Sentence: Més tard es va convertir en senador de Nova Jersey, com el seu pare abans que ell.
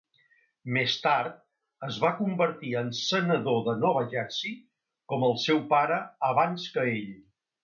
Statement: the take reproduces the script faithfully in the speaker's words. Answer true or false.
true